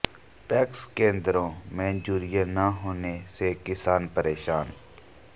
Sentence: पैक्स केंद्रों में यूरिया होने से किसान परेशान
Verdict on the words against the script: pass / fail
fail